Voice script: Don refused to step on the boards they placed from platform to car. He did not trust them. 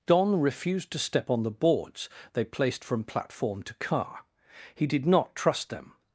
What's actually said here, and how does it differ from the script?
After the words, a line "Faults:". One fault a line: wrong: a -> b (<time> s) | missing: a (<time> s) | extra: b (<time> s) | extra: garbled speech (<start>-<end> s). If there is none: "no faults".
Don refused to step on the boards they placed from platform to car. He did not trust them.
Faults:
no faults